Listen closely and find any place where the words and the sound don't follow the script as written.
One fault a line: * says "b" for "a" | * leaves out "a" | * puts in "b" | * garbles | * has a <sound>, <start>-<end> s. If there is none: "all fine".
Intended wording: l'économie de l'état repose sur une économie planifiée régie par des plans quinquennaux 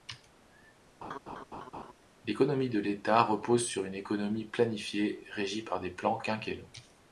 * has a laugh, 1.0-1.9 s